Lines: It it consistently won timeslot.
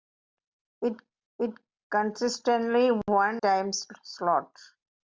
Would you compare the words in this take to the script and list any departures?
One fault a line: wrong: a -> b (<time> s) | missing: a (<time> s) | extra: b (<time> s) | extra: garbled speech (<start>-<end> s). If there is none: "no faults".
no faults